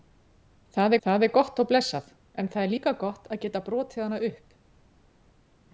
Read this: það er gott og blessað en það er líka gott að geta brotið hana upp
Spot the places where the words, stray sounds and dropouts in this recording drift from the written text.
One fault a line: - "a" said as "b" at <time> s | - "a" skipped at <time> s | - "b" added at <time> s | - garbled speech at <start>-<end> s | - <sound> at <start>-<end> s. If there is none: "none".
- "það" added at 1.1 s